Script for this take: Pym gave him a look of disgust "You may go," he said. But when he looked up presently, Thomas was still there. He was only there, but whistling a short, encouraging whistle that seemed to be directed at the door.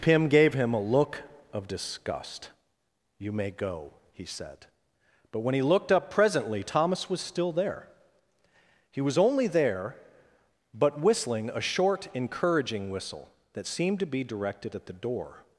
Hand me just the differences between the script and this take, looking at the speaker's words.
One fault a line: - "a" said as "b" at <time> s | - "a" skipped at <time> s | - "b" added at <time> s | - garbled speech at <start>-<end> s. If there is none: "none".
none